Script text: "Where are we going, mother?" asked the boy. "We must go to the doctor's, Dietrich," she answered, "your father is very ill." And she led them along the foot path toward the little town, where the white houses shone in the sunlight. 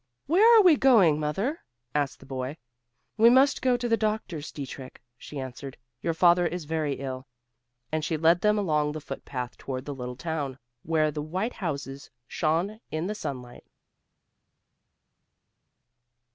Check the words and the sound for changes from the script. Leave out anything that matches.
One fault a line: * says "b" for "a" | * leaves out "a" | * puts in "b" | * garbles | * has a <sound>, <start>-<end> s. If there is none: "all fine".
all fine